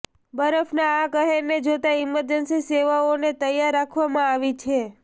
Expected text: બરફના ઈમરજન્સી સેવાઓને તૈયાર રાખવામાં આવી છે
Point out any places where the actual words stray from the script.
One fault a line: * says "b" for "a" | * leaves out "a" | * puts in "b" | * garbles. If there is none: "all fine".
* puts in "આ કહેરને જોતા"